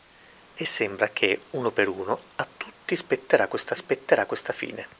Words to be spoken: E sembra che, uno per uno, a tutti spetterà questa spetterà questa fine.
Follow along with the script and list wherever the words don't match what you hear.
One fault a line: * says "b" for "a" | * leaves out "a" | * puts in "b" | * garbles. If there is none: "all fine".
all fine